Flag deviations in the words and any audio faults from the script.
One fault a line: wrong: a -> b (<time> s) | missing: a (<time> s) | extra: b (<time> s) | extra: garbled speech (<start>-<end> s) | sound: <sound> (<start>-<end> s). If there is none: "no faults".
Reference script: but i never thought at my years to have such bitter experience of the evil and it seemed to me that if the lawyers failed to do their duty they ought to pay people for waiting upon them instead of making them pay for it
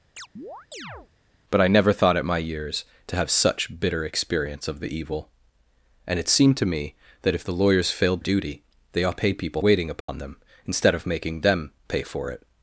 sound: chirp (0.2-1.1 s)
missing: to do their (8.2 s)
missing: to (9.2 s)
missing: for (9.6 s)
sound: dropout (10.0-10.1 s)